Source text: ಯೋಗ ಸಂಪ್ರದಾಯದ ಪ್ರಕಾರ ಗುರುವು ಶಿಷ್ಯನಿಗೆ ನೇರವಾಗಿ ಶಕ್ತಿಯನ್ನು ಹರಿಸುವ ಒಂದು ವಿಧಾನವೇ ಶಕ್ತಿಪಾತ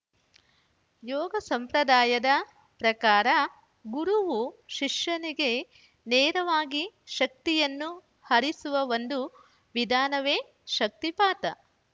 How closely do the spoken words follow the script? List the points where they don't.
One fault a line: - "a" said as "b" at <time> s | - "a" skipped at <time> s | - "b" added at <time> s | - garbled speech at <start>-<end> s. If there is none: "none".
none